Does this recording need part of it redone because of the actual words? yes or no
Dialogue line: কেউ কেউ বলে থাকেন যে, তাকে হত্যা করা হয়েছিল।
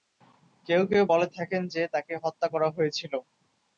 no